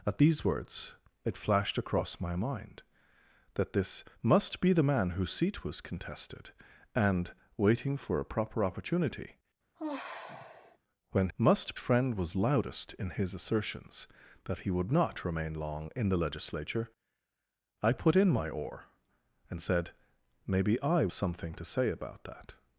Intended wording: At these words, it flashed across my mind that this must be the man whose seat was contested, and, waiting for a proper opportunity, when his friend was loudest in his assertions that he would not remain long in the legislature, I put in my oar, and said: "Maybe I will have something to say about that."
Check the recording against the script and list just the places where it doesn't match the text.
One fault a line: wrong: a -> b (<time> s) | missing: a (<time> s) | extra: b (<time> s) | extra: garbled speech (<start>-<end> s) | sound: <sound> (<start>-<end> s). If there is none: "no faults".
sound: sigh (9.8-10.8 s)
wrong: his -> must (11.4 s)
missing: will have (21.1 s)